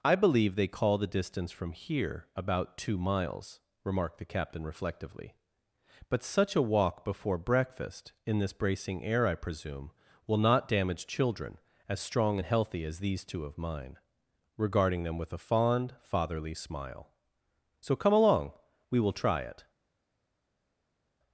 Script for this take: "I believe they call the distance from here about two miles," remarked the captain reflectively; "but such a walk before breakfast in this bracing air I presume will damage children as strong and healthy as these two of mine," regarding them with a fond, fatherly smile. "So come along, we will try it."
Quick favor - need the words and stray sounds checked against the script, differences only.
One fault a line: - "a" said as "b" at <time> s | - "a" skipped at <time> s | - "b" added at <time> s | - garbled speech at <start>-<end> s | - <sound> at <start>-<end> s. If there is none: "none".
- "not" added at 10.4 s